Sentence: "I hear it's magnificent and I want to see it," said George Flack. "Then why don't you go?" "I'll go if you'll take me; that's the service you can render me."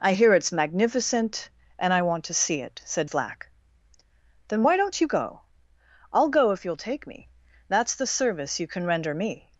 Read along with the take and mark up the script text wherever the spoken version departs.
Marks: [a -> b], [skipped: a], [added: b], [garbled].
"I hear it's magnificent and I want to see it," said [skipped: George] Flack. "Then why don't you go?" "I'll go if you'll take me; that's the service you can render me."